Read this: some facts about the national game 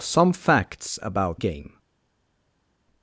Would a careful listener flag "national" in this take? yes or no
yes